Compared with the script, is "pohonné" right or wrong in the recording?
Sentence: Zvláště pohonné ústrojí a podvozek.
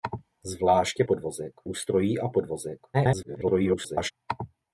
wrong